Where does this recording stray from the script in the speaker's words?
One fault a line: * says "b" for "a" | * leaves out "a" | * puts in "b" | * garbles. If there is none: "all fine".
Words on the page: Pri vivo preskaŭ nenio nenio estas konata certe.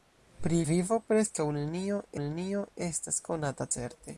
all fine